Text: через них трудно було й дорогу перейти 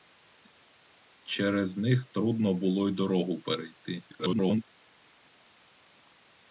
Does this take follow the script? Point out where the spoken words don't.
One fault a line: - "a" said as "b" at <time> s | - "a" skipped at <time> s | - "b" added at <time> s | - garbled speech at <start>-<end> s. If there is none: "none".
- garbled speech at 4.1-4.6 s